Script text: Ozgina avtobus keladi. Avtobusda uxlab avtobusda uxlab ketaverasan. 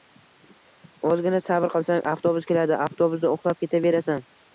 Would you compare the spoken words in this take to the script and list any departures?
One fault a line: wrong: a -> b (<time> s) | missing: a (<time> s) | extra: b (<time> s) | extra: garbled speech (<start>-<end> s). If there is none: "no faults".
extra: sabr qilsang (1.5 s)
missing: avtobusda uxlab (3.6 s)